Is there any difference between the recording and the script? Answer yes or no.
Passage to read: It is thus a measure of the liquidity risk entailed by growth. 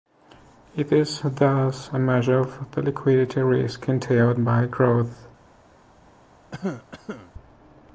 no